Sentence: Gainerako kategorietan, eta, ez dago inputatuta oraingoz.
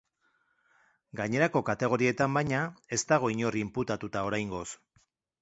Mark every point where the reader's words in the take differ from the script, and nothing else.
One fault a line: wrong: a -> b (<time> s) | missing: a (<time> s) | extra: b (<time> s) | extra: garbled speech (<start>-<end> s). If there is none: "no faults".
wrong: eta -> baina (2.4 s)
extra: inor (3.3 s)